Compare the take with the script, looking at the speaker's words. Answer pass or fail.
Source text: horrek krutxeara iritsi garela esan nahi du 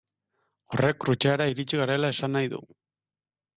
pass